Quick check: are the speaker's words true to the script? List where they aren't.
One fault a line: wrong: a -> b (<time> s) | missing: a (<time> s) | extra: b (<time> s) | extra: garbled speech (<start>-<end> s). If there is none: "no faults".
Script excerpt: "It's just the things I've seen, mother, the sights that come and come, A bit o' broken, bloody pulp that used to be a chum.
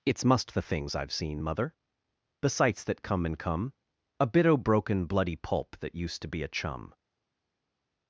wrong: just -> must (0.2 s)